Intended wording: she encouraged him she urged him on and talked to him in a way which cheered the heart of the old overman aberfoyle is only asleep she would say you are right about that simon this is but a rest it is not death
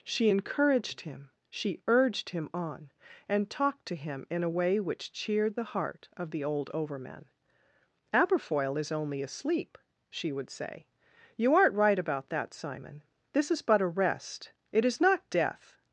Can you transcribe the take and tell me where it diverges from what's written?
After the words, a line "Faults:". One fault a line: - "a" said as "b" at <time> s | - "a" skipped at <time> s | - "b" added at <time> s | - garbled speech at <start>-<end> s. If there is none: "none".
she encouraged him she urged him on and talked to him in a way which cheered the heart of the old overman aberfoyle is only asleep she would say you aren't right about that simon this is but a rest it is not death
Faults:
- "are" said as "aren't" at 11.5 s